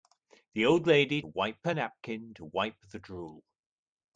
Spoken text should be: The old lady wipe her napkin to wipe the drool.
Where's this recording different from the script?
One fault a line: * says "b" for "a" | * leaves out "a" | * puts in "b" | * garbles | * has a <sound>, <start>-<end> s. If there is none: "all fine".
all fine